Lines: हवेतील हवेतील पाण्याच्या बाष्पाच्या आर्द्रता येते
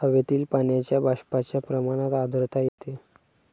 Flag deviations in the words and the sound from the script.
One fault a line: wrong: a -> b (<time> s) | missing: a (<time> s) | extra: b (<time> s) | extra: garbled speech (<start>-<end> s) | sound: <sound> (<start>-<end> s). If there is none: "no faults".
missing: हवेतील (0.4 s)
extra: प्रमाणात (1.6 s)
sound: dropout (2.7-2.8 s)